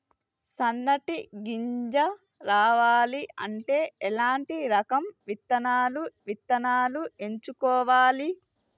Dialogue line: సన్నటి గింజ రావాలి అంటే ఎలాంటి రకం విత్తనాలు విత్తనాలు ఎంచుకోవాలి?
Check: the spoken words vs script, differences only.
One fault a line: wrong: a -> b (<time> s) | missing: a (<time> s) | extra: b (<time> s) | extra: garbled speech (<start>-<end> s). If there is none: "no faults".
no faults